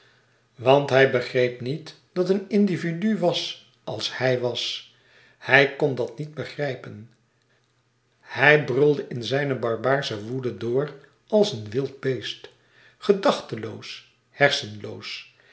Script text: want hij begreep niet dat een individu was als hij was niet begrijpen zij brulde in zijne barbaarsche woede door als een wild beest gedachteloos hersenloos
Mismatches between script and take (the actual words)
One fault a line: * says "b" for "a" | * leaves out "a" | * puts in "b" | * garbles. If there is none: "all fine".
* puts in "hij kon dat"
* says "hij" for "zij"